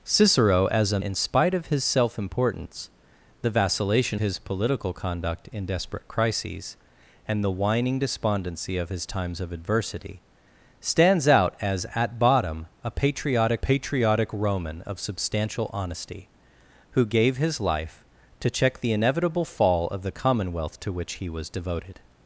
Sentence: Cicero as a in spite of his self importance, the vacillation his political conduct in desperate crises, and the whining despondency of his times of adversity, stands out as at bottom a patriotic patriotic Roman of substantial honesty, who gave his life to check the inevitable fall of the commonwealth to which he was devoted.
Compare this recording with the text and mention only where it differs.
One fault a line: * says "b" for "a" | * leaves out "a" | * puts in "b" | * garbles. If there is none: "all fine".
all fine